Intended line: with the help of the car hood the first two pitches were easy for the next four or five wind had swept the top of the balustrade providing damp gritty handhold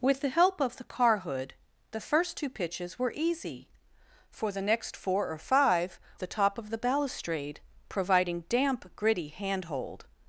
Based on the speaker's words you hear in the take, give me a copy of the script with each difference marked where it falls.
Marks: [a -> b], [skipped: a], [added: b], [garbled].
with the help of the car hood the first two pitches were easy for the next four or five [skipped: wind had swept] the top of the balustrade providing damp gritty handhold